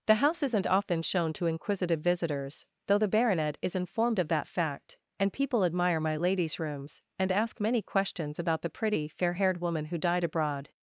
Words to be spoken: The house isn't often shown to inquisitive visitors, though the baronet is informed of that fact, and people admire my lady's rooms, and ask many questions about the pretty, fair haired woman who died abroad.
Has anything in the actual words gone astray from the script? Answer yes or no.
no